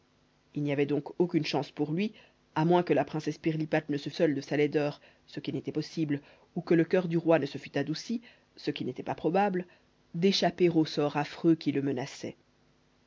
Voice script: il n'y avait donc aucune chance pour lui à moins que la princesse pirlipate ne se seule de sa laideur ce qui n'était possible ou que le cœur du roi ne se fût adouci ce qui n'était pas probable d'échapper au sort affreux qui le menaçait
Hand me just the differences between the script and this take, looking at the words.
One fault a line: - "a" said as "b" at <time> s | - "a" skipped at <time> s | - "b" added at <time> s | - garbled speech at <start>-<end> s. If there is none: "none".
none